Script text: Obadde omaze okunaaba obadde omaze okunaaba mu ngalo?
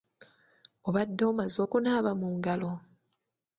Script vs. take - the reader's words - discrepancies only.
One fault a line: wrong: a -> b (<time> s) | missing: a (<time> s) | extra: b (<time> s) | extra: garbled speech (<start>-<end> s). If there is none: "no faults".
missing: obadde omaze okunaaba (2.1 s)